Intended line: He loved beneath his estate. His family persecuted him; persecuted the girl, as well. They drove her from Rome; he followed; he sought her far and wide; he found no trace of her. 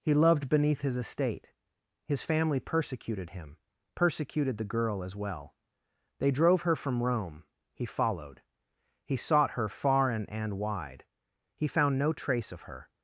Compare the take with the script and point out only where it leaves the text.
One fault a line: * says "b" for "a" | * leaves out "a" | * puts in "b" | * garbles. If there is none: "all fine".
* puts in "and"